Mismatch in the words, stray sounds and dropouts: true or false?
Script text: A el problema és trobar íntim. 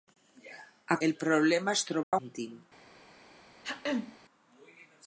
true